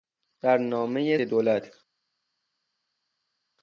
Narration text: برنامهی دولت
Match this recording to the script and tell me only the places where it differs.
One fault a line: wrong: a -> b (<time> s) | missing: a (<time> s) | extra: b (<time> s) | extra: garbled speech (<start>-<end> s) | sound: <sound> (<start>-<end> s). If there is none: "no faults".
no faults